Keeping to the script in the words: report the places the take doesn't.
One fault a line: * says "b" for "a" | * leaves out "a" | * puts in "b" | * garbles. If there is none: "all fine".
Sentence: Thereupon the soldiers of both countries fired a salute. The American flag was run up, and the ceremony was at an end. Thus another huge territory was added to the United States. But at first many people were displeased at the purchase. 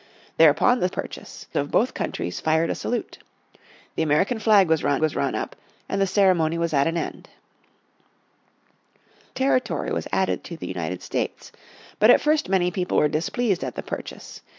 * says "purchase" for "soldiers"
* puts in "was run"
* leaves out "Thus another huge"